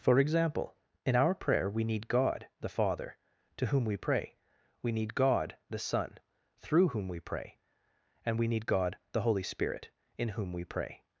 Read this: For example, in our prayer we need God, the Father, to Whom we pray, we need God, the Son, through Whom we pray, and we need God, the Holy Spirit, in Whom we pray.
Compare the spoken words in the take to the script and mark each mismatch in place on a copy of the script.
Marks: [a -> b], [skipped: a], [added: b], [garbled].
For example, in our prayer we need God, the Father, to Whom we pray, we need God, the Son, through Whom we pray, and we need God, the Holy Spirit, in Whom we pray.